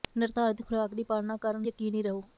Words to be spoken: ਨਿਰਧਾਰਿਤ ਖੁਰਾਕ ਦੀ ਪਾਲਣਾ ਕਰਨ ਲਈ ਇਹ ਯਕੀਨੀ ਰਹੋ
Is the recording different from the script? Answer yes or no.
yes